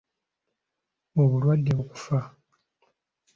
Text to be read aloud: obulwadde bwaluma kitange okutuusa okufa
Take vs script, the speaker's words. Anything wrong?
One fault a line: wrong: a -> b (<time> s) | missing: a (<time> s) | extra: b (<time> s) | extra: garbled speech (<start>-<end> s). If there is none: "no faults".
missing: bwaluma kitange okutuusa (1.7 s)